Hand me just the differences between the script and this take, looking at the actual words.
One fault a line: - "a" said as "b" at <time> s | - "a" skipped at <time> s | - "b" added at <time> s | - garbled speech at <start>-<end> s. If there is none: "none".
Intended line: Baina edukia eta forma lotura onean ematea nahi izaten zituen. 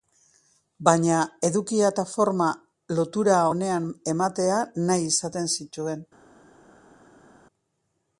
none